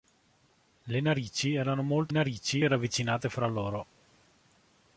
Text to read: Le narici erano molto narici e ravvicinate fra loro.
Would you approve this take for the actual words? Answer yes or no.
yes